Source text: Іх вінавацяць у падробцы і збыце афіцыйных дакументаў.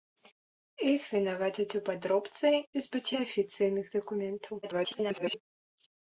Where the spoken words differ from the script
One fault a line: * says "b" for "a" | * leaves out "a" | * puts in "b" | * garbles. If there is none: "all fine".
* garbles